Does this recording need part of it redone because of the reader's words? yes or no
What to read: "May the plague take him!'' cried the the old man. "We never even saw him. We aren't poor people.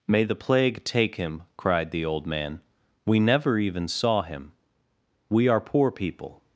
yes